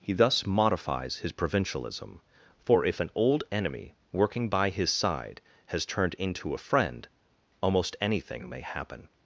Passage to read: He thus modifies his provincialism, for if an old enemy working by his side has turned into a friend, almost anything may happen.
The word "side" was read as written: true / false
true